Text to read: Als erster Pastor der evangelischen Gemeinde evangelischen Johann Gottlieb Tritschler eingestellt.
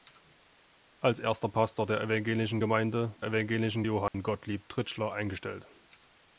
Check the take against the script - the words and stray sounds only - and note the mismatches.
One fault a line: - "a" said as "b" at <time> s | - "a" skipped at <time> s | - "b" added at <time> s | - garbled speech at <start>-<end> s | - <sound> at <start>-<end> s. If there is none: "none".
- dropout at 4.1-4.1 s